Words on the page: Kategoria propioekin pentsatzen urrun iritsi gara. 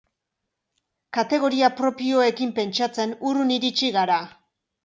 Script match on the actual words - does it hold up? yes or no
yes